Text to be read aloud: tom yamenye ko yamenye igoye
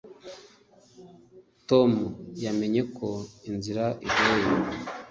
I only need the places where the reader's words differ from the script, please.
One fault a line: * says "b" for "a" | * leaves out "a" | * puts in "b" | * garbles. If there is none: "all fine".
* says "inzira" for "yamenye"